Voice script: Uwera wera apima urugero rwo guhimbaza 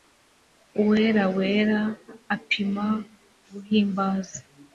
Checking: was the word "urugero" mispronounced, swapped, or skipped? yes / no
yes